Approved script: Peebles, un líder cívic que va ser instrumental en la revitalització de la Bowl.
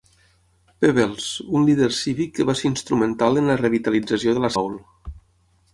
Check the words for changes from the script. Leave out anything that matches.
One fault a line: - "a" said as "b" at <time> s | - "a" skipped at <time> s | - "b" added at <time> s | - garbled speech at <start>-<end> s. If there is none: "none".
none